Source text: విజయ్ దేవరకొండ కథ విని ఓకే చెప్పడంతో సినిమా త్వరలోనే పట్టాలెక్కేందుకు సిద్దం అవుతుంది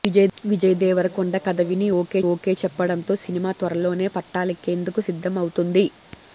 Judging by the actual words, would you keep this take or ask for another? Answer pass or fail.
fail